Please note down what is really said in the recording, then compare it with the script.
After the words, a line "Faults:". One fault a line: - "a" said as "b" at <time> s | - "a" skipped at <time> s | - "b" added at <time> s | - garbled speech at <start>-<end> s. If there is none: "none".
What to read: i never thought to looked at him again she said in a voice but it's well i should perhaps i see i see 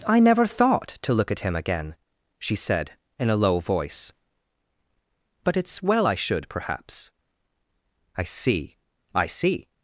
i never thought to look at him again she said in a low voice but it's well i should perhaps i see i see
Faults:
- "looked" said as "look" at 1.1 s
- "low" added at 3.4 s